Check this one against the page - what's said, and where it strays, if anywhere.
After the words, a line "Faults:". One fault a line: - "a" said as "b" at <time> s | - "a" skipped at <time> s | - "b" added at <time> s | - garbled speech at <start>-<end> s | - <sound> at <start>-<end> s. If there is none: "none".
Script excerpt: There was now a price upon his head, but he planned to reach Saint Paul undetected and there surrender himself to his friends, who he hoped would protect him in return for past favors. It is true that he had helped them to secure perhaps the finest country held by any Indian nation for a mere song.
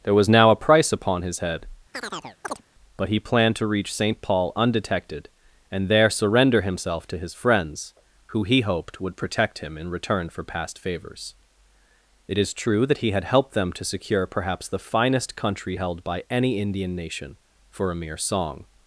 There was now a price upon his head, but he planned to reach Saint Paul undetected and there surrender himself to his friends, who he hoped would protect him in return for past favors. It is true that he had helped them to secure perhaps the finest country held by any Indian nation for a mere song.
Faults:
- chirp at 1.9-2.6 s